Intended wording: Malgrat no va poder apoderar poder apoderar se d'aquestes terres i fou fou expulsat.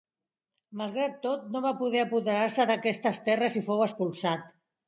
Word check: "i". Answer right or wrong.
right